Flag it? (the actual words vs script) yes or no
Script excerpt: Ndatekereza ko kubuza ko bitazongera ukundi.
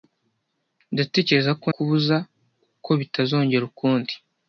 no